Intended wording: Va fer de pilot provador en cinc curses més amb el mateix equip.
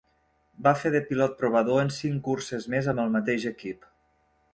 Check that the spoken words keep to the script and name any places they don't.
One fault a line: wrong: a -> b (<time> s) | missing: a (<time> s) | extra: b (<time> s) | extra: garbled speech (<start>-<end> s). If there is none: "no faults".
no faults